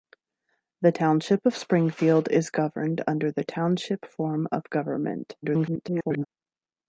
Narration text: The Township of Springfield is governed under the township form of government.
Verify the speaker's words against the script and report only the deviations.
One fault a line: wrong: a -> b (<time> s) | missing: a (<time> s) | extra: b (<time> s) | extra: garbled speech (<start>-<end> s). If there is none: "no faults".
extra: garbled speech (5.4-6.3 s)